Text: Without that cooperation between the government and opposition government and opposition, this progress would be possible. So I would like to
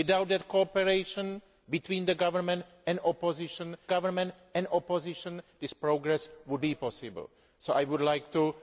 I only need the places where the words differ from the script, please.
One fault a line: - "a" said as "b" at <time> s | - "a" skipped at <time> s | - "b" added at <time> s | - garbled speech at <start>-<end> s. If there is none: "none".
none